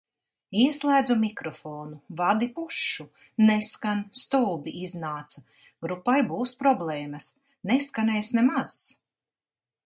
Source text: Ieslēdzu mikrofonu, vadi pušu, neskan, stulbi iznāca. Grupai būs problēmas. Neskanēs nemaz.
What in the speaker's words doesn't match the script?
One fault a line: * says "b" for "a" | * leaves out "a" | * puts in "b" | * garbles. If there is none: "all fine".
all fine